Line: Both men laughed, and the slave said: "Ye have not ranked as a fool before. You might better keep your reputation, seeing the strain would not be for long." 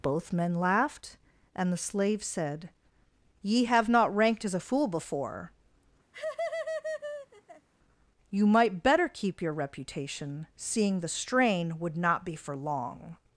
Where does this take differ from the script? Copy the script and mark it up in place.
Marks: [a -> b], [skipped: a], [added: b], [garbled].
Both men laughed, and the slave said: "Ye have not ranked as a fool before. You might better keep your reputation, seeing the strain would not be for long."